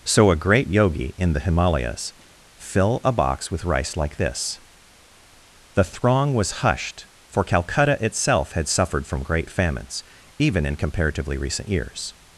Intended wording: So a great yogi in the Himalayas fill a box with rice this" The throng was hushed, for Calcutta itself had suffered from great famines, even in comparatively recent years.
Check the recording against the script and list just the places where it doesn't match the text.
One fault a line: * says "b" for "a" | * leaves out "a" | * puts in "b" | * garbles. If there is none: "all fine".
* puts in "like"